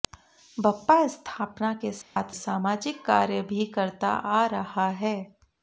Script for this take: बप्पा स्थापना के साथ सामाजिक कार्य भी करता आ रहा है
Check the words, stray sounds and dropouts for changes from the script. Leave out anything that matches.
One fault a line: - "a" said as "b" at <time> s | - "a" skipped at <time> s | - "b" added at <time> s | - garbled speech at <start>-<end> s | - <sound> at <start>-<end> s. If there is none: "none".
- dropout at 2.0-2.2 s